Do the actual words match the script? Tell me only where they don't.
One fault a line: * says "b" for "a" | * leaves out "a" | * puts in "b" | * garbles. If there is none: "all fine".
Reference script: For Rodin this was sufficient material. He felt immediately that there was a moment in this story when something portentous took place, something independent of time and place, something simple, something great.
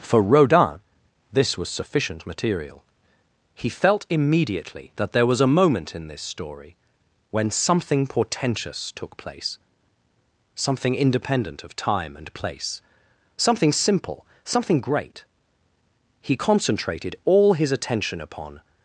* puts in "He concentrated all his attention upon"